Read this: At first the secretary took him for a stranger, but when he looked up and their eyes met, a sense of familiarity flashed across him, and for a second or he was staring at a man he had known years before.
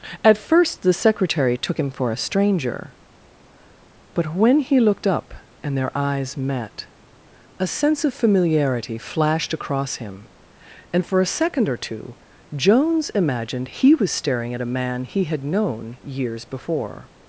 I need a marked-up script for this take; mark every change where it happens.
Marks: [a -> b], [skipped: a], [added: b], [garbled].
At first the secretary took him for a stranger, but when he looked up and their eyes met, a sense of familiarity flashed across him, and for a second or [added: two Jones imagined] he was staring at a man he had known years before.